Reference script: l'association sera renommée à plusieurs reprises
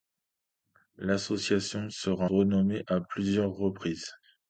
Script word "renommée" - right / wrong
right